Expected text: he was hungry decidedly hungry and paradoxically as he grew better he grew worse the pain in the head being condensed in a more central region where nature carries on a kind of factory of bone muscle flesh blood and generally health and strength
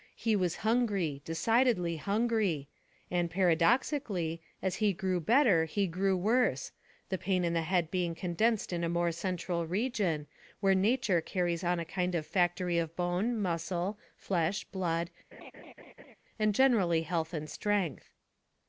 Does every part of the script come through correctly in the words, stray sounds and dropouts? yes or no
no